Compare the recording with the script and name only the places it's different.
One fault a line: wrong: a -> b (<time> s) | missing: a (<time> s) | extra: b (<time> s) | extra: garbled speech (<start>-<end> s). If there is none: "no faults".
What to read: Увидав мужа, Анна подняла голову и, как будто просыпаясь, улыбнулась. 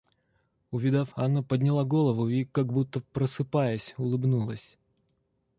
missing: мужа (1.1 s)